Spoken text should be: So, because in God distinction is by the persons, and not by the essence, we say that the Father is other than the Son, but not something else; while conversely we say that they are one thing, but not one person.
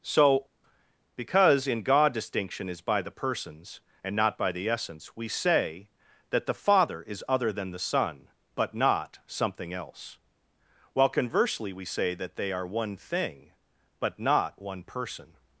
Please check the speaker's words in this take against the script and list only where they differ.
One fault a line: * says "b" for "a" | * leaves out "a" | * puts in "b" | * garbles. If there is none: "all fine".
all fine